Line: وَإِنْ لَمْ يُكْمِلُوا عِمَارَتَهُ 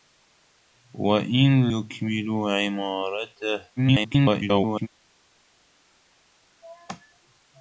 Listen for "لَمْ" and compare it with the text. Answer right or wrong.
wrong